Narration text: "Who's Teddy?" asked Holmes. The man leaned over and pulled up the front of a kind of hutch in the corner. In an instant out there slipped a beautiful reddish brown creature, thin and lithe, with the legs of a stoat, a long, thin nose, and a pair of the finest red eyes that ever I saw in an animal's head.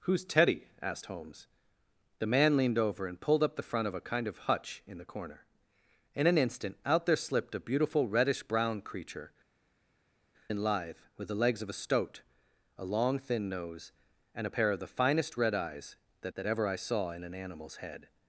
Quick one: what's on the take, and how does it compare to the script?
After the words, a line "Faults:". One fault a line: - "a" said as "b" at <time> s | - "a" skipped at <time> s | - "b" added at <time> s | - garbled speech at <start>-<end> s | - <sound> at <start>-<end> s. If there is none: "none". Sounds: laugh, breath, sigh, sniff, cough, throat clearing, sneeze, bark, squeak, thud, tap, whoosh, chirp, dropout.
"Who's Teddy?" asked Holmes. The man leaned over and pulled up the front of a kind of hutch in the corner. In an instant out there slipped a beautiful reddish brown creature, and lithe, with the legs of a stoat, a long, thin nose, and a pair of the finest red eyes that that ever I saw in an animal's head.
Faults:
- "thin" skipped at 9.3 s
- "that" added at 16.3 s